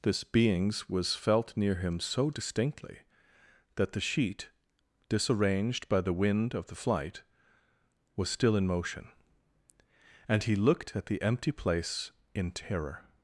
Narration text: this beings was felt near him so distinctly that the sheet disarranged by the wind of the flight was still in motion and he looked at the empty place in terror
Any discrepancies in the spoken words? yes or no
no